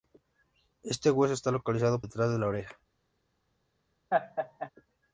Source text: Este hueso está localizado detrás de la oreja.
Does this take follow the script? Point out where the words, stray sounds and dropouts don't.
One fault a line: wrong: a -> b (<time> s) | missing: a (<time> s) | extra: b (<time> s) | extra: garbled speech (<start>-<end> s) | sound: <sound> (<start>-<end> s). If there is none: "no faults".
sound: laugh (4.1-4.7 s)